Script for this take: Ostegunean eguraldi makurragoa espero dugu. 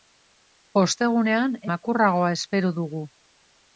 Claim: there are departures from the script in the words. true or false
true